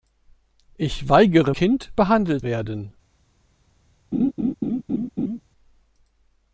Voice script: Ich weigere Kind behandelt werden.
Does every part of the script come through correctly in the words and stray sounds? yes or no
no